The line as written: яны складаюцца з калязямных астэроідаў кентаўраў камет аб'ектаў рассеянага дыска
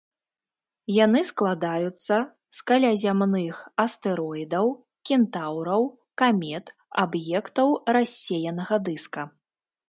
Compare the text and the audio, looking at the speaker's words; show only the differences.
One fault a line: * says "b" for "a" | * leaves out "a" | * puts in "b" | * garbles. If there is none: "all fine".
all fine